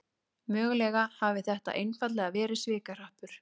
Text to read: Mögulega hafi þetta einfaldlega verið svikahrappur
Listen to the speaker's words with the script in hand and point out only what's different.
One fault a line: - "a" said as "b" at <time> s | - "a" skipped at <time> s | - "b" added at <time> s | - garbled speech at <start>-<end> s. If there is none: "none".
none